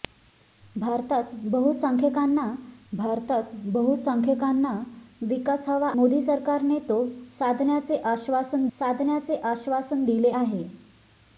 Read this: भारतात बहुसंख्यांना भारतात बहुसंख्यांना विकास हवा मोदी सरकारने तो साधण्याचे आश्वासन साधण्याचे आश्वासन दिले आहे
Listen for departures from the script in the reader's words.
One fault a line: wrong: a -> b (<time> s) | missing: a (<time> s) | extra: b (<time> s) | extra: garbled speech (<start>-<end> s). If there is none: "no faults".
no faults